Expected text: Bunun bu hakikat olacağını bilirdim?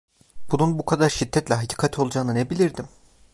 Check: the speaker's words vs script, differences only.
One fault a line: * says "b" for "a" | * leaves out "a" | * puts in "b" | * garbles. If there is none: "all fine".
* puts in "kadar şiddetle"
* puts in "ne"